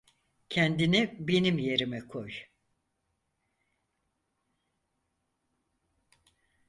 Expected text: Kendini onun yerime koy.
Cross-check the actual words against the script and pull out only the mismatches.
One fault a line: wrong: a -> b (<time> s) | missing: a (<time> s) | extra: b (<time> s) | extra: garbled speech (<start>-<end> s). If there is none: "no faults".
wrong: onun -> benim (1.2 s)